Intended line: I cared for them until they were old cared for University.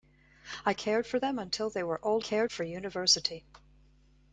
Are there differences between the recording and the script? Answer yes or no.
no